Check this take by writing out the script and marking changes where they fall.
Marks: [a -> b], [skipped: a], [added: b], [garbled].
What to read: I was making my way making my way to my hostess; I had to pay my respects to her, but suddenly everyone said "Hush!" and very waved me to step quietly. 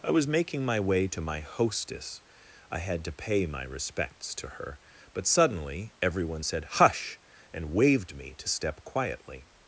I was making my way [skipped: making my way] to my hostess; I had to pay my respects to her, but suddenly everyone said "Hush!" and [skipped: very] waved me to step quietly.